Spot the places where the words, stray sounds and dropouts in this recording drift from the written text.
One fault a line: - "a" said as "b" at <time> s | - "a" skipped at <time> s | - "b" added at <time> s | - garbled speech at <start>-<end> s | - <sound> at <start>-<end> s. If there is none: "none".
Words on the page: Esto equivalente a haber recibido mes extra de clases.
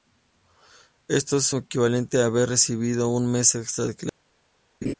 - "es" added at 1.4 s
- "un" added at 3.1 s
- laugh at 4.8-4.9 s